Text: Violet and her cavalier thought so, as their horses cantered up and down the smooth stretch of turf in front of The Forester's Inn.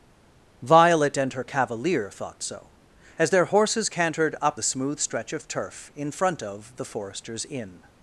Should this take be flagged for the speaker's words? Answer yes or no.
yes